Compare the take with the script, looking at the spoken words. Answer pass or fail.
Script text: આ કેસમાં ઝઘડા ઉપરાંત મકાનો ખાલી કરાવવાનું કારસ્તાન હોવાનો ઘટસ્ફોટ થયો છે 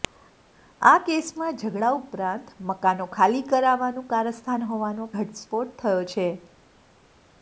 pass